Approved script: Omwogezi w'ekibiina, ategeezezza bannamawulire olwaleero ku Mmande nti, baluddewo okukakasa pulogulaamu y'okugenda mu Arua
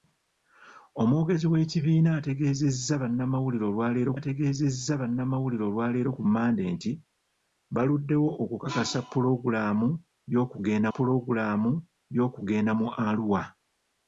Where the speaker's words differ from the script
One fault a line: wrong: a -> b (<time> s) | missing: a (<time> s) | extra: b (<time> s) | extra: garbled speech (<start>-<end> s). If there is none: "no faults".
extra: ategeezezza bannamawulire olwaleero (4.2 s)
extra: pulogulaamu y'okugenda (10.9 s)